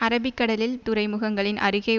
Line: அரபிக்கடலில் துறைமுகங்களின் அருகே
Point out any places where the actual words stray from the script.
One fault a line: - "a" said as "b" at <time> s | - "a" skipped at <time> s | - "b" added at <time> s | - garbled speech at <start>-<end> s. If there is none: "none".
none